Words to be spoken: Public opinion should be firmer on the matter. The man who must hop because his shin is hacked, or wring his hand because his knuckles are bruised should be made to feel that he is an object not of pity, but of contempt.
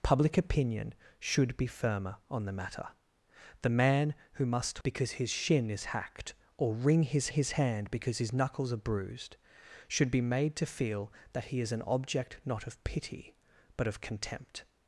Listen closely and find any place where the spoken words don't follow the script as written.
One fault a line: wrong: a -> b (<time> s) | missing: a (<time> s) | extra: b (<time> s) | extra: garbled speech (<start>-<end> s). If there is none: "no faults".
missing: hop (4.8 s)
extra: his (7.3 s)